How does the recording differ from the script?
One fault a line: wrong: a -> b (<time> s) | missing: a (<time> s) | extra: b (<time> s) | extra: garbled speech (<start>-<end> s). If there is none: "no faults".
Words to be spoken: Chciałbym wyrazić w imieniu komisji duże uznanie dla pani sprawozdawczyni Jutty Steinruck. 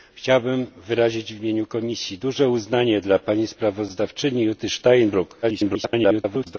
extra: garbled speech (5.4-6.6 s)